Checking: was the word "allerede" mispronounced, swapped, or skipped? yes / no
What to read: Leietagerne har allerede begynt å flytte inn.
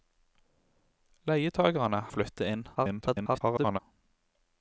yes